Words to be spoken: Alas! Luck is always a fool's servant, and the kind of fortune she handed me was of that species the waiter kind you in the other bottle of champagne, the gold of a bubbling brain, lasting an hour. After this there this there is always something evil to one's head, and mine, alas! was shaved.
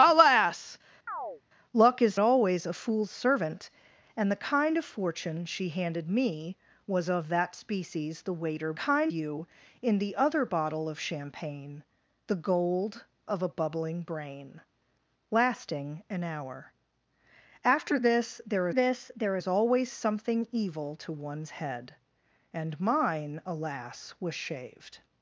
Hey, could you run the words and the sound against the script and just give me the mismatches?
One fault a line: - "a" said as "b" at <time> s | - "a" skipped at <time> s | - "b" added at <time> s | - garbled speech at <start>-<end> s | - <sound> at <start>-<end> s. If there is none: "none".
- chirp at 1.1-1.4 s